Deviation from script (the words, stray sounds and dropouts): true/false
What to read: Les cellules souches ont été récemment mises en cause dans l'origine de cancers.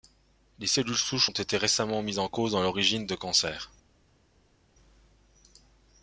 false